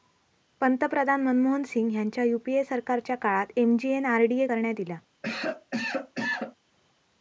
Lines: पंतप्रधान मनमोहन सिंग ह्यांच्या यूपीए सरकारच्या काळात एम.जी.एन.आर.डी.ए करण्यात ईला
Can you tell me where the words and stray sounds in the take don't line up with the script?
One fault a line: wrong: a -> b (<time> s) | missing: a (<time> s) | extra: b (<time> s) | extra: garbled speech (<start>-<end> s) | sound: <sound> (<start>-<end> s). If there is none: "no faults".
sound: cough (5.2-6.6 s)